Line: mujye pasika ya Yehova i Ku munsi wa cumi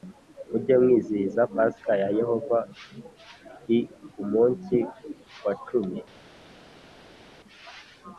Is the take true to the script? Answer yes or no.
no